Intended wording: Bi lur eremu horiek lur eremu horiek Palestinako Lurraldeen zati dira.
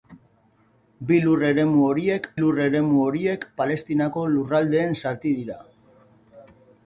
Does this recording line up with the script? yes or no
yes